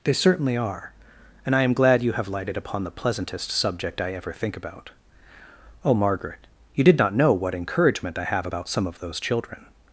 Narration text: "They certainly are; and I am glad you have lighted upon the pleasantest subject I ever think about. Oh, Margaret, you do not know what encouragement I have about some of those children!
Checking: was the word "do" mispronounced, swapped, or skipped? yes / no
yes